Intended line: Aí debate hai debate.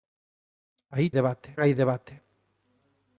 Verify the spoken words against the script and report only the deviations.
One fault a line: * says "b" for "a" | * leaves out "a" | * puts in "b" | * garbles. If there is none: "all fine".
all fine